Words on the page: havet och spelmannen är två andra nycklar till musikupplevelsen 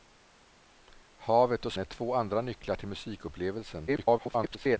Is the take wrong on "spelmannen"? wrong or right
wrong